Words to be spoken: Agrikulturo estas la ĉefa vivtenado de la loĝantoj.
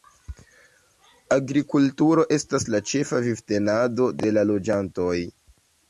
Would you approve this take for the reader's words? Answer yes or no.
yes